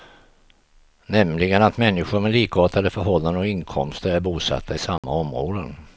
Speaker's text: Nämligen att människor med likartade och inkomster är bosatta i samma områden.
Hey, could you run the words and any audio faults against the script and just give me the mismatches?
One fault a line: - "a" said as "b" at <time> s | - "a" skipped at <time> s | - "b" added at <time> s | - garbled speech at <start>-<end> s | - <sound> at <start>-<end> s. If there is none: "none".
- "förhållanden" added at 2.9 s
- dropout at 5.0-5.0 s